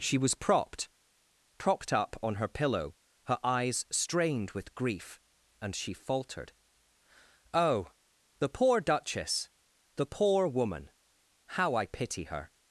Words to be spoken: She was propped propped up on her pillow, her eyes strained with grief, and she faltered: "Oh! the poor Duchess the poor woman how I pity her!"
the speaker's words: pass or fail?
pass